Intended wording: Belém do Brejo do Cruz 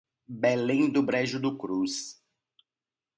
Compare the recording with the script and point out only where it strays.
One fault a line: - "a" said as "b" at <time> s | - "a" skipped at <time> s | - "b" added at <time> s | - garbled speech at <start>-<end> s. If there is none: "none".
none